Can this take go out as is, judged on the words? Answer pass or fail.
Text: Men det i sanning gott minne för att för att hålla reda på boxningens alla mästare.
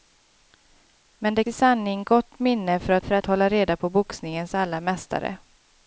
pass